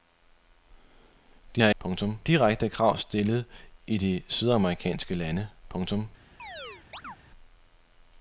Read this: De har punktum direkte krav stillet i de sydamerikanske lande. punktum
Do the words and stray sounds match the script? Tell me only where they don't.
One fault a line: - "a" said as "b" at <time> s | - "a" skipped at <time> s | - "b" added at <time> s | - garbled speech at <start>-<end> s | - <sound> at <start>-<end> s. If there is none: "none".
- chirp at 6.4-7.2 s